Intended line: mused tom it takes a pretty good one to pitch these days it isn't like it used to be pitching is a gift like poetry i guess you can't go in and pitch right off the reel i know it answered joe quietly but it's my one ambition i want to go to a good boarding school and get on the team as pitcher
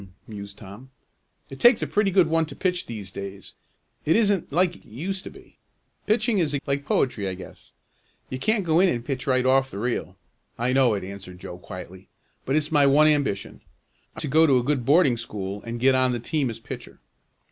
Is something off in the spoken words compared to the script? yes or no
yes